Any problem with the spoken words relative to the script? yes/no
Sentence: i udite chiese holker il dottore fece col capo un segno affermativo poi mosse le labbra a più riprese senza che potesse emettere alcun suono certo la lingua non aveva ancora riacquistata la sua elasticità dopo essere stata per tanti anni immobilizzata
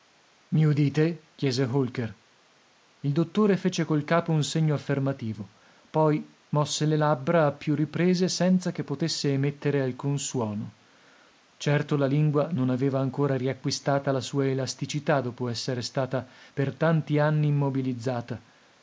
no